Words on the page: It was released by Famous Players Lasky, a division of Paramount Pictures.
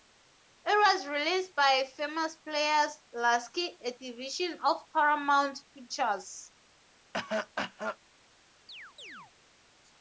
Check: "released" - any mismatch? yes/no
no